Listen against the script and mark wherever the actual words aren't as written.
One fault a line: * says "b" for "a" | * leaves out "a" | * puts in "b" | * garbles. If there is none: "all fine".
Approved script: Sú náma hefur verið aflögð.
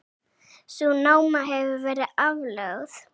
all fine